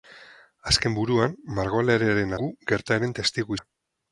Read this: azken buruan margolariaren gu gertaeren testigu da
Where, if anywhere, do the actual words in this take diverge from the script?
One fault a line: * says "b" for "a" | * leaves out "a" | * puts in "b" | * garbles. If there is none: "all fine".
all fine